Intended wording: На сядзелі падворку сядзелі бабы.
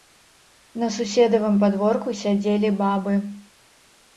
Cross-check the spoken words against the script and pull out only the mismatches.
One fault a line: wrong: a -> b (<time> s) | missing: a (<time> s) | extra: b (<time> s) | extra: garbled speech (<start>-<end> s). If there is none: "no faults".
wrong: сядзелі -> суседавым (0.9 s)